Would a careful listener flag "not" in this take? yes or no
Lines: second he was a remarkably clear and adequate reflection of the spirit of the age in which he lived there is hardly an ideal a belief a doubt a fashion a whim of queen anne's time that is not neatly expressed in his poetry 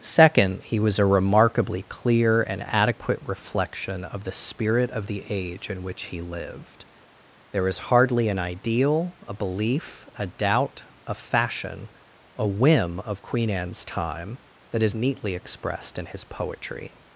yes